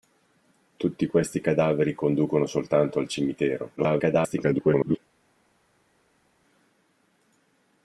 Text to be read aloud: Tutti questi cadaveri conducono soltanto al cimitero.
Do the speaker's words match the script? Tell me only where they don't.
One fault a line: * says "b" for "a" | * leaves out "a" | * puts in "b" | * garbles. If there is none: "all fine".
* garbles